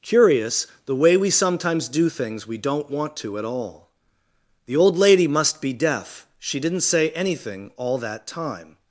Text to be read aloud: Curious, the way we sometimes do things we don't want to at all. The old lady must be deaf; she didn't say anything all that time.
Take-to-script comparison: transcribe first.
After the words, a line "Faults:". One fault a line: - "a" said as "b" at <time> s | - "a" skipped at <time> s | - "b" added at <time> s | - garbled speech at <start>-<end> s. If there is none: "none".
Curious, the way we sometimes do things we don't want to at all. The old lady must be deaf; she didn't say anything all that time.
Faults:
none